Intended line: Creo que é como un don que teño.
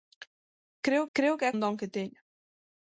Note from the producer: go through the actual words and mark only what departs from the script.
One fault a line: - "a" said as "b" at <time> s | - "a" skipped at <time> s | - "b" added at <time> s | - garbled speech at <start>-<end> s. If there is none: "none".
- "creo" added at 1.2 s
- "como" skipped at 1.6 s